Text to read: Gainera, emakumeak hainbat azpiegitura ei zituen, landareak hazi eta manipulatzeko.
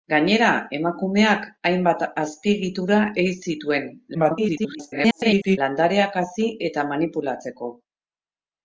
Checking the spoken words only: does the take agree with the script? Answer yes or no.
no